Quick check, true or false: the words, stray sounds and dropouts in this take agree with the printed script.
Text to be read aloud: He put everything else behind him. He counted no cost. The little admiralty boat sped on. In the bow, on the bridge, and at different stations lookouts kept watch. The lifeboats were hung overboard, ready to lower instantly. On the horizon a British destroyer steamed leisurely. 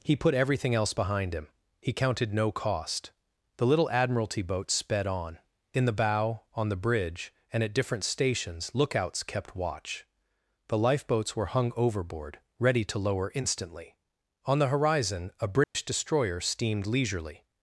false